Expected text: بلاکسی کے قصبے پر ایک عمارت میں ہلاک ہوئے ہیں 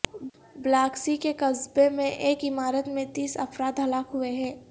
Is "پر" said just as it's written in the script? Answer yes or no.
no